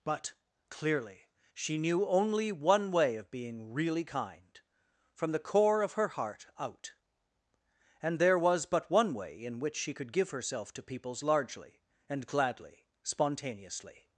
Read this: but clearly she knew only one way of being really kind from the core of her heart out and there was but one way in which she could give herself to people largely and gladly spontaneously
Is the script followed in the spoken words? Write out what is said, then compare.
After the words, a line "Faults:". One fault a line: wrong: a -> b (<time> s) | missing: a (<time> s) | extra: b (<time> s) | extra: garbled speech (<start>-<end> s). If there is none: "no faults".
but clearly she knew only one way of being really kind from the core of her heart out and there was but one way in which she could give herself to peoples largely and gladly spontaneously
Faults:
wrong: people -> peoples (10.8 s)